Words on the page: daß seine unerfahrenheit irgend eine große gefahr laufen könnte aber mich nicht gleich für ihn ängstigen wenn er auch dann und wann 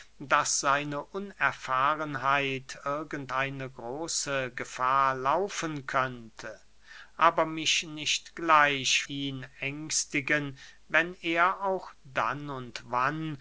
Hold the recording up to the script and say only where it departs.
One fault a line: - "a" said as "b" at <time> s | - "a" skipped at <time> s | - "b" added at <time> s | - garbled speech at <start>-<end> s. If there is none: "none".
- "für" skipped at 9.0 s